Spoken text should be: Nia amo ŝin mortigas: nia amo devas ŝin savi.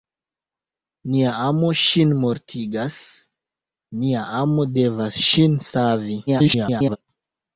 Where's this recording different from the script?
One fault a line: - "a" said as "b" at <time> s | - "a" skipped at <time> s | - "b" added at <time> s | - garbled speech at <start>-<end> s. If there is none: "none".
- garbled speech at 6.3-7.0 s